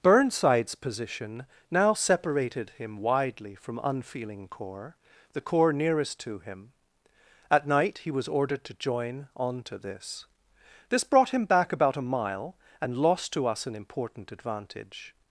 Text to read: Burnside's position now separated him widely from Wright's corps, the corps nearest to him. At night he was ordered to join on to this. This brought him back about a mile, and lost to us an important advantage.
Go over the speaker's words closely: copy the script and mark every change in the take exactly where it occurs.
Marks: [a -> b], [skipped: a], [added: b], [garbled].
Burnside's position now separated him widely from [Wright's -> Unfeeling] corps, the corps nearest to him. At night he was ordered to join on to this. This brought him back about a mile, and lost to us an important advantage.